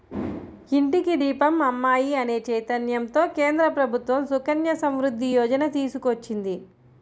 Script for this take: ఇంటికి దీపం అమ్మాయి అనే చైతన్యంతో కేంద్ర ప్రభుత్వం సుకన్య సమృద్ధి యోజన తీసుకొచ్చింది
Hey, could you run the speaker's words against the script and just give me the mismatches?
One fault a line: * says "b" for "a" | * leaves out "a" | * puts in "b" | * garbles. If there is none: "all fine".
all fine